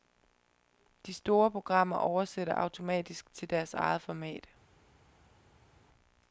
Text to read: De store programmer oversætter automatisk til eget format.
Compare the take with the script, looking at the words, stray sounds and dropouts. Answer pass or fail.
fail